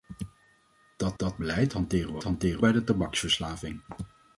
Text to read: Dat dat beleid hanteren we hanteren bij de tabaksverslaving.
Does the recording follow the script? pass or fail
pass